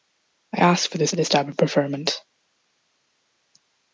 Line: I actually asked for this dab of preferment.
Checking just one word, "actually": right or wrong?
wrong